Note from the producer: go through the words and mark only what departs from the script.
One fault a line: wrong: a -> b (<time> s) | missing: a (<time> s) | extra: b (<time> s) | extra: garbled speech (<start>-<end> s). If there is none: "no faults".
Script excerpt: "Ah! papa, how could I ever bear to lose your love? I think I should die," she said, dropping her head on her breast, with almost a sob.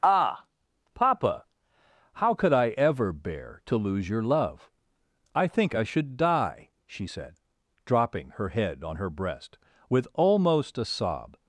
no faults